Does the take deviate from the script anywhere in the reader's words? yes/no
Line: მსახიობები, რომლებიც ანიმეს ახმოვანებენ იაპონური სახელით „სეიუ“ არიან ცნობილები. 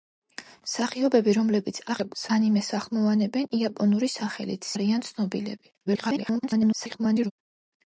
yes